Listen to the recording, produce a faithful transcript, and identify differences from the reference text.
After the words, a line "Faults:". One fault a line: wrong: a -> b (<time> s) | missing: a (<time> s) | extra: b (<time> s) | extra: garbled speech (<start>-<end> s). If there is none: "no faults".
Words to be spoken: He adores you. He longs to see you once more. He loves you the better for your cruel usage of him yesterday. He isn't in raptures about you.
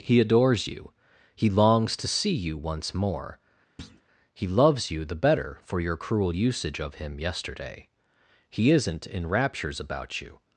He adores you. He longs to see you once more. He loves you the better for your cruel usage of him yesterday. He isn't in raptures about you.
Faults:
no faults